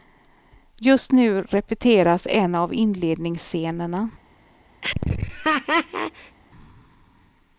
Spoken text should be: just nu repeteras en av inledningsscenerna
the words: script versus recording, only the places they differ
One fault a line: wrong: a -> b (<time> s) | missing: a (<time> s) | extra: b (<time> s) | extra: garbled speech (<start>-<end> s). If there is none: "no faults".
no faults